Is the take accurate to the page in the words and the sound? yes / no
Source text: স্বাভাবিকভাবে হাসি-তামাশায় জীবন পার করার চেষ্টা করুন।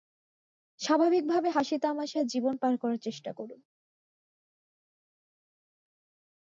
yes